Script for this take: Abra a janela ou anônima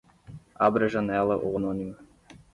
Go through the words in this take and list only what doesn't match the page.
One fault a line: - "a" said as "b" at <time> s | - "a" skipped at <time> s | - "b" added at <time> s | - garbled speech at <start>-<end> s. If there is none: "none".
none